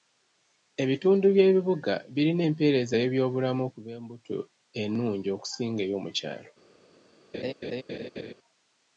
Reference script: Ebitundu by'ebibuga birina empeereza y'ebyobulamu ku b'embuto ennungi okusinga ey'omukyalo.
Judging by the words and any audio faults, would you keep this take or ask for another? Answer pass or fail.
fail